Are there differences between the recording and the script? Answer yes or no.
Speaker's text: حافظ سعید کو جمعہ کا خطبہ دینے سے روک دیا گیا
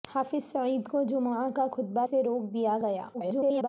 yes